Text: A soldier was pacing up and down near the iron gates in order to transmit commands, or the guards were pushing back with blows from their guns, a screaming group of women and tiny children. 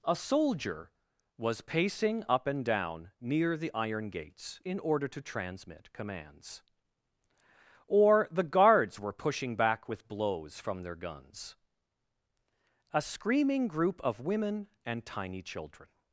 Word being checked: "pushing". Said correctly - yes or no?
yes